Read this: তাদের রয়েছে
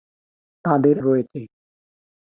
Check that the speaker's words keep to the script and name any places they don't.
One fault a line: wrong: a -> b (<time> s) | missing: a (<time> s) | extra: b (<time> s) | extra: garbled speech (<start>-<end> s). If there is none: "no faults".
no faults